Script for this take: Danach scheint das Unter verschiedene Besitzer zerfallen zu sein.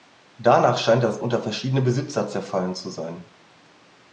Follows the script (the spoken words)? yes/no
yes